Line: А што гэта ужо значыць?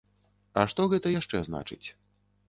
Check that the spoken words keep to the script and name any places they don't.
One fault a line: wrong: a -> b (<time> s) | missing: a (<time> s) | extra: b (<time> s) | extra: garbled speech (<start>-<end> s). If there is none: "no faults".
wrong: ужо -> яшчэ (1.1 s)